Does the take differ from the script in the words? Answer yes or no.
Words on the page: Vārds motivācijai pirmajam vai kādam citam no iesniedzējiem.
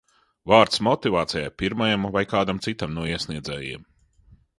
no